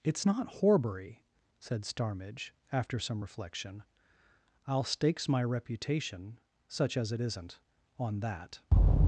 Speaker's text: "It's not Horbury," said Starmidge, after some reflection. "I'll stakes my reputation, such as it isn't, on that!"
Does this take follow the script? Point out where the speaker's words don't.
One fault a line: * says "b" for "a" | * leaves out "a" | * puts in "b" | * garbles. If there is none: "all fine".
all fine